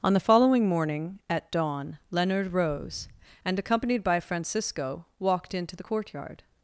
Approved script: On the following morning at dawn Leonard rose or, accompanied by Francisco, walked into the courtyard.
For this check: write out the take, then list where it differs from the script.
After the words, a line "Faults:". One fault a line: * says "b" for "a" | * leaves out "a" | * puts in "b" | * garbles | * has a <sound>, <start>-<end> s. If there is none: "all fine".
On the following morning at dawn Leonard rose and, accompanied by Francisco, walked into the courtyard.
Faults:
* says "and" for "or"